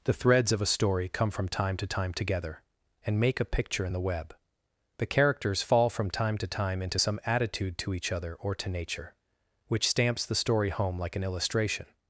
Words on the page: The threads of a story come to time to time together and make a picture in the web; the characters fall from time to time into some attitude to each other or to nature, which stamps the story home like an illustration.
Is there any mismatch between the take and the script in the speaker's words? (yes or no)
yes